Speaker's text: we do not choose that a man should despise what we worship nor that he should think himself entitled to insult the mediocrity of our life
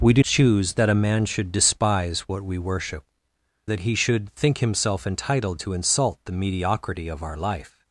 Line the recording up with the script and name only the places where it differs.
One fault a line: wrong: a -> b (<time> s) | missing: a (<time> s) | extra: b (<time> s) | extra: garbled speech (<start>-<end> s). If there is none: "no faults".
missing: not (0.2 s)
missing: nor (3.0 s)